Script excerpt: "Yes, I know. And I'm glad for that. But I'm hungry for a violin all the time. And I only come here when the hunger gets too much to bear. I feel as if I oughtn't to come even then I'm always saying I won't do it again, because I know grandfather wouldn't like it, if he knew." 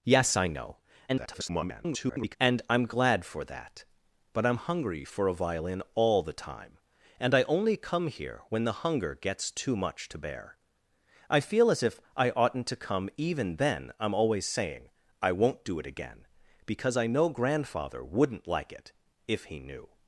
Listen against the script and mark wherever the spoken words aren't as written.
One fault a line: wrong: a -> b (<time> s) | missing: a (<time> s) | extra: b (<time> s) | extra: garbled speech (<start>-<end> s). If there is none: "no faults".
extra: garbled speech (1.1-2.4 s)